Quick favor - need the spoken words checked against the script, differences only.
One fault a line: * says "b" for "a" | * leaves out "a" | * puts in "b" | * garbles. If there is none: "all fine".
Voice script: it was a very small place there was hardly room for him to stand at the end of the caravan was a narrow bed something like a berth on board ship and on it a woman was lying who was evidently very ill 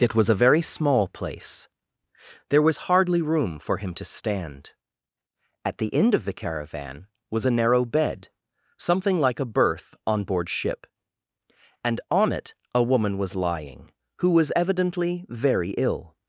all fine